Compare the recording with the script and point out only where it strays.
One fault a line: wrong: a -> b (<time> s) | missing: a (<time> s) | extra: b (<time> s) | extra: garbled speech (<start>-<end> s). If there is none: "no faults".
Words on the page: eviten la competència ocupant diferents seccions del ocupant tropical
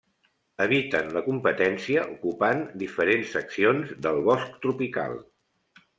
wrong: ocupant -> bosc (4.3 s)